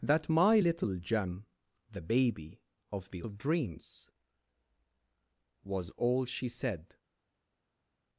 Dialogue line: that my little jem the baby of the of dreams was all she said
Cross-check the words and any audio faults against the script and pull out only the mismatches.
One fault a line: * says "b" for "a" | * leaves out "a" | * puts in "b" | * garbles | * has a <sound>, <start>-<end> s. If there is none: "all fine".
all fine